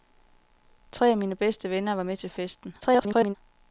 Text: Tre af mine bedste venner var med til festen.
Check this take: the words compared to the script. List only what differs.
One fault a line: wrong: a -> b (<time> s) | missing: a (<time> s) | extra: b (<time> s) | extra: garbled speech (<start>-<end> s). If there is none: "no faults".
extra: garbled speech (2.8-3.4 s)